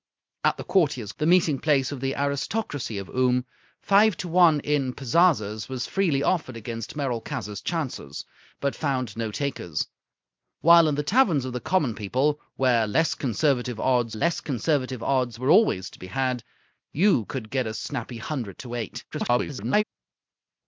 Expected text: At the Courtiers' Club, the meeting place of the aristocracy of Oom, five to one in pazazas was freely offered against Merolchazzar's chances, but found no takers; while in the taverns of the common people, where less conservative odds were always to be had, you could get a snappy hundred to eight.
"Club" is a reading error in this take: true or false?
true